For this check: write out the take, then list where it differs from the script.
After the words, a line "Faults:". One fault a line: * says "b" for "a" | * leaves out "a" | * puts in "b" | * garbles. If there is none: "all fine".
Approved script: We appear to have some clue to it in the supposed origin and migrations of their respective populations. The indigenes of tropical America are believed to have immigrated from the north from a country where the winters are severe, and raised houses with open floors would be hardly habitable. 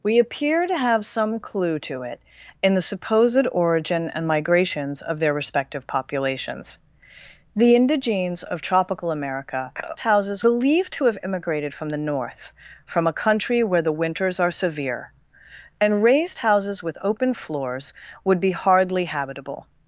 We appear to have some clue to it in the supposed origin and migrations of their respective populations. The indigenes of tropical America houses believed to have immigrated from the north from a country where the winters are severe, and raised houses with open floors would be hardly habitable.
Faults:
* says "houses" for "are"